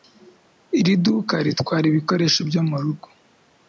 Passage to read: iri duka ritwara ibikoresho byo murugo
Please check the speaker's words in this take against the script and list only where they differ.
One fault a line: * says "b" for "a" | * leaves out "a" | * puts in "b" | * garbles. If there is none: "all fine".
all fine